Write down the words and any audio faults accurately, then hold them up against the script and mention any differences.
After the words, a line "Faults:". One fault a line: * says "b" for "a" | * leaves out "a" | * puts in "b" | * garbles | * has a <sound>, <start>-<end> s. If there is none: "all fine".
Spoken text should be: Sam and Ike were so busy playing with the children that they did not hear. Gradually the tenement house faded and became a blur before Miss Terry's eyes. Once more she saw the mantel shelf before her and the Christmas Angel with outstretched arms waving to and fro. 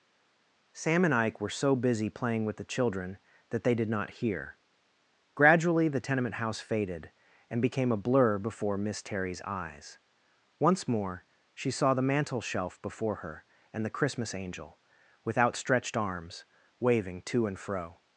Sam and Ike were so busy playing with the children that they did not hear. Gradually the tenement house faded and became a blur before Miss Terry's eyes. Once more she saw the mantel shelf before her and the Christmas Angel with outstretched arms waving to and fro.
Faults:
all fine